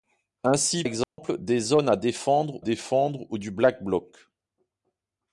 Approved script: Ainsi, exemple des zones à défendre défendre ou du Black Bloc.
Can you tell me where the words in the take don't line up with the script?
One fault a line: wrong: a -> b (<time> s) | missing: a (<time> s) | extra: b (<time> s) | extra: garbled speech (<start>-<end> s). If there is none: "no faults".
no faults